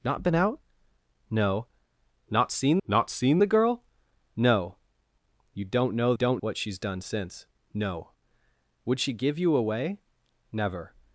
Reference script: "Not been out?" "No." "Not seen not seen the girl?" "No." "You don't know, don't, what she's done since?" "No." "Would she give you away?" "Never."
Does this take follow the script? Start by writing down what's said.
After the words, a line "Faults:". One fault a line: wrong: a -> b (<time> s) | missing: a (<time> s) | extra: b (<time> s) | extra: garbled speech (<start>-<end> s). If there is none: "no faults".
"Not been out?" "No." "Not seen not seen the girl?" "No." "You don't know, don't, what she's done since?" "No." "Would she give you away?" "Never."
Faults:
no faults